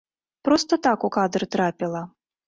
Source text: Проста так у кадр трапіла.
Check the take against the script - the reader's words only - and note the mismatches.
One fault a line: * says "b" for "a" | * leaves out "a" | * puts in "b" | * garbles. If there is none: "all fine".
all fine